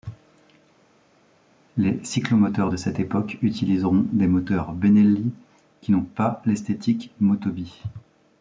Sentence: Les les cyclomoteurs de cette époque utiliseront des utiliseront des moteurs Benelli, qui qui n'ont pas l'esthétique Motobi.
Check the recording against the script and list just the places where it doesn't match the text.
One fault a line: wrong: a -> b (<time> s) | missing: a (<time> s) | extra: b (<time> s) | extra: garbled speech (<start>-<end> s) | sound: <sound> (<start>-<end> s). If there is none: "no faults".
missing: les (2.0 s)
missing: utiliseront des (4.2 s)
missing: qui (5.9 s)